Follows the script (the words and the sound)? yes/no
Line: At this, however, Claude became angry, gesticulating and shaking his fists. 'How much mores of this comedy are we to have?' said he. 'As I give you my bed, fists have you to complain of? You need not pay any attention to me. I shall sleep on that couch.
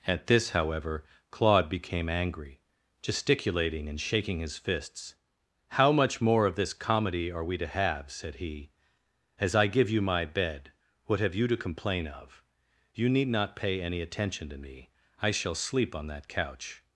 no